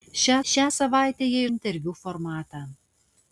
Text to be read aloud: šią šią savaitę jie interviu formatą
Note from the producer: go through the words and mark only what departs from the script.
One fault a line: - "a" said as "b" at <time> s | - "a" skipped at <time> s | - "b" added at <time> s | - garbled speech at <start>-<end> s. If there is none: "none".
none